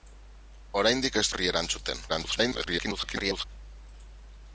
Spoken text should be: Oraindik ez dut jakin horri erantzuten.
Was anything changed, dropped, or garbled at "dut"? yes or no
yes